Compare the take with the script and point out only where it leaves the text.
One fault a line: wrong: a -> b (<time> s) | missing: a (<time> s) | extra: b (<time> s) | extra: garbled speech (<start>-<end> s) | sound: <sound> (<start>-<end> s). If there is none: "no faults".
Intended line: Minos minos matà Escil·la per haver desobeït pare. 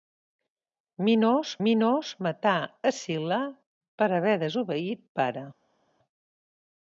no faults